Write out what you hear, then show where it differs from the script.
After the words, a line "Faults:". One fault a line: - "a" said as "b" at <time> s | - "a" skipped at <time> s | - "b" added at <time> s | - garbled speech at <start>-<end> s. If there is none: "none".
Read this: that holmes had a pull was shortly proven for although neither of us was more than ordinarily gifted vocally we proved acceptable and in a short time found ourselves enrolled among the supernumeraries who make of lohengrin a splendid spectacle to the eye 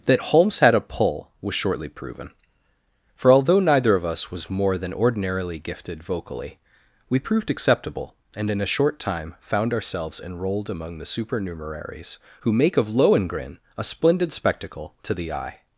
that holmes had a pull was shortly proven for although neither of us was more than ordinarily gifted vocally we proved acceptable and in a short time found ourselves enrolled among the supernumeraries who make of lohengrin a splendid spectacle to the eye
Faults:
none